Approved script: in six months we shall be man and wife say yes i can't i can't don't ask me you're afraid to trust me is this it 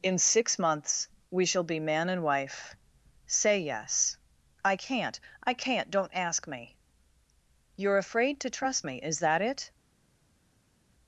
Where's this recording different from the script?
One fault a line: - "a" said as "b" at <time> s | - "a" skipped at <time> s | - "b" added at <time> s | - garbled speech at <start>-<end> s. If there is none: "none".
- "this" said as "that" at 9.2 s